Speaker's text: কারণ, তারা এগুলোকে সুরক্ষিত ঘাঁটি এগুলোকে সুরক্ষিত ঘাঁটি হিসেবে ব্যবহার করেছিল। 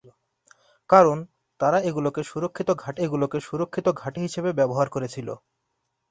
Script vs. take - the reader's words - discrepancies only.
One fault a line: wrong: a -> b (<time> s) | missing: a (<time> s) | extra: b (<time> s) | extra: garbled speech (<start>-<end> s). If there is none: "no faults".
no faults